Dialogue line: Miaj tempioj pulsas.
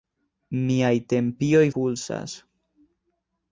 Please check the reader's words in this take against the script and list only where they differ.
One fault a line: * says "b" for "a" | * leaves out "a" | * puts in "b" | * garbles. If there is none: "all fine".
all fine